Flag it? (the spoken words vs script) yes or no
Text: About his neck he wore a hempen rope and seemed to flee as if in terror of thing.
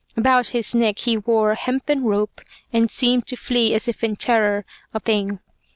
no